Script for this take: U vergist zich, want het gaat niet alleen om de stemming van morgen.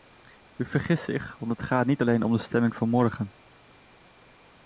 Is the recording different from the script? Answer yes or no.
no